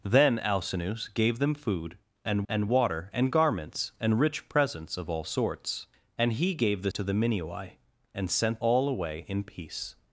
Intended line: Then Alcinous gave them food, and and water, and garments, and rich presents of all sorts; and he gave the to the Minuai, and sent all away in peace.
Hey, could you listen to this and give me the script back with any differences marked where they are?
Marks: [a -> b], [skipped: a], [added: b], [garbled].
Then Alcinous gave them food, and and water, and garments, and rich presents of all sorts; and he gave the to the Minuai, and sent all away in peace.